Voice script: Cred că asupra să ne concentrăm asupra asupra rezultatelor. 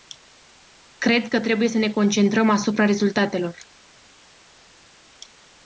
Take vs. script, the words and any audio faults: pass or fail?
fail